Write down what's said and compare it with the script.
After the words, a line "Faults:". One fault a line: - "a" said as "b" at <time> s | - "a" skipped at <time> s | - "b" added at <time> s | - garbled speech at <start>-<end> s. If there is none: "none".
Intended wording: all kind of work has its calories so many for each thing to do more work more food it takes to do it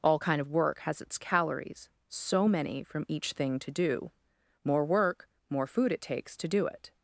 all kind of work has its calories so many from each thing to do more work more food it takes to do it
Faults:
- "for" said as "from" at 2.8 s